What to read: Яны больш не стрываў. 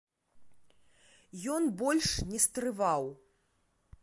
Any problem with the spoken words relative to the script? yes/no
yes